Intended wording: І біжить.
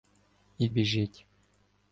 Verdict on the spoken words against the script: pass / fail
pass